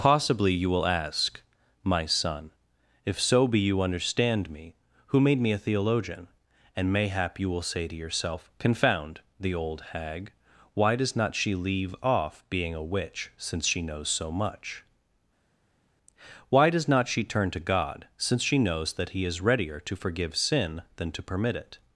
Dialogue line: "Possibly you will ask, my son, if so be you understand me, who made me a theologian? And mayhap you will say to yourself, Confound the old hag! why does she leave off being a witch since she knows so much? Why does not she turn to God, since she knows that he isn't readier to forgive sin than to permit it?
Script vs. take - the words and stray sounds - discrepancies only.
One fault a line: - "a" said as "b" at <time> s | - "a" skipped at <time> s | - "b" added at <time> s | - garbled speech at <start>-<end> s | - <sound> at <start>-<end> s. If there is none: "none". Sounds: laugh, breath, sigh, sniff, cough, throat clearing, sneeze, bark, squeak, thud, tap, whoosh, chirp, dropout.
- "not" added at 11.2 s
- "isn't" said as "is" at 19.2 s